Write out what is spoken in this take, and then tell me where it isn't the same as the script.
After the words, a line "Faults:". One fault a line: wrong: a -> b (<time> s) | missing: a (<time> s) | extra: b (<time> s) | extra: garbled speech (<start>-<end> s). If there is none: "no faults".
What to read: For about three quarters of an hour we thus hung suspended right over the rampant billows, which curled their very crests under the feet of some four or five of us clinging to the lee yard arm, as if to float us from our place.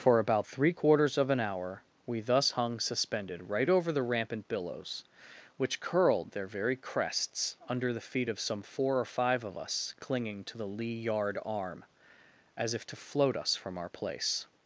For about three quarters of an hour we thus hung suspended right over the rampant billows, which curled their very crests under the feet of some four or five of us clinging to the lee yard arm, as if to float us from our place.
Faults:
no faults